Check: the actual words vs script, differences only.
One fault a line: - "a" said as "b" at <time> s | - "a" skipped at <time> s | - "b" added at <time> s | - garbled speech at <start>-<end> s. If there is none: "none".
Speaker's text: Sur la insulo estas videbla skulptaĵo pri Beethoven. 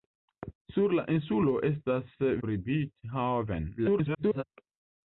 - "videbla skulptaĵo" skipped at 2.1 s
- garbled speech at 3.8-4.4 s